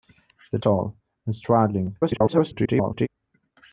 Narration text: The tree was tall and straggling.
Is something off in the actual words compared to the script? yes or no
yes